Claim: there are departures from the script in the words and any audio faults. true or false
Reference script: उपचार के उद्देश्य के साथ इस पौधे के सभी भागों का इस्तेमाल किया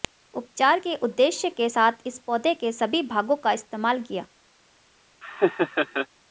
true